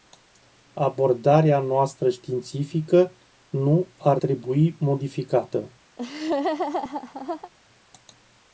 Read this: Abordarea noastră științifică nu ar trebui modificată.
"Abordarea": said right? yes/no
yes